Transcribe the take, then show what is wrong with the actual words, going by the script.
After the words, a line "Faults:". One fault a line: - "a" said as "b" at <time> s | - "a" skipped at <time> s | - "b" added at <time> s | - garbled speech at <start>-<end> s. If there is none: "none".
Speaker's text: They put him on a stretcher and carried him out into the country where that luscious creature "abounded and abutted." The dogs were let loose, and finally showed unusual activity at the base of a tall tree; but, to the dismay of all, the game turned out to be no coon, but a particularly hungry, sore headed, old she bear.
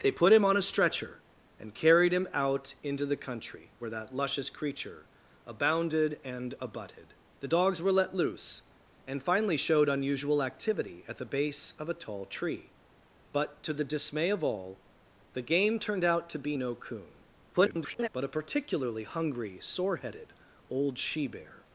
They put him on a stretcher and carried him out into the country where that luscious creature "abounded and abutted." The dogs were let loose, and finally showed unusual activity at the base of a tall tree; but, to the dismay of all, the game turned out to be no coon, [garbled] but a particularly hungry, sore headed, old she bear.
Faults:
- garbled speech at 17.5-18.1 s